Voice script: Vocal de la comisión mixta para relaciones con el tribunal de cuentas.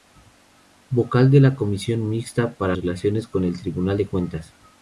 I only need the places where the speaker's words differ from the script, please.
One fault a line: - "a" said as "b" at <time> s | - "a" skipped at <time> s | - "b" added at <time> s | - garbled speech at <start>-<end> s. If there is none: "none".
none